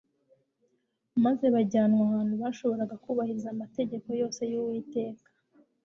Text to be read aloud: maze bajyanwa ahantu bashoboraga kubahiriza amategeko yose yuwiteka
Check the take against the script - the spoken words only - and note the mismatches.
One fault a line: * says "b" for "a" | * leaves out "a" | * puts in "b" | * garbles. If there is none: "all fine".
all fine